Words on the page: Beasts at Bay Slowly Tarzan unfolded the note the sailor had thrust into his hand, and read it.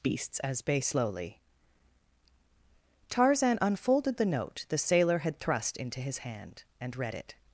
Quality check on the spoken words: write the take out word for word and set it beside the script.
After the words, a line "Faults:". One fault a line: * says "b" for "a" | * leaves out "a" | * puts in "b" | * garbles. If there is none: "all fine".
Beasts as Bay Slowly Tarzan unfolded the note the sailor had thrust into his hand, and read it.
Faults:
* says "as" for "at"